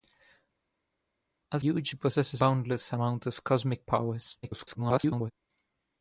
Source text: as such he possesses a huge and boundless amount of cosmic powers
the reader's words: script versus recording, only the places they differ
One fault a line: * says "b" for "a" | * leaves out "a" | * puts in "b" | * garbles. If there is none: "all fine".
* says "huge" for "such"
* leaves out "a huge and"
* garbles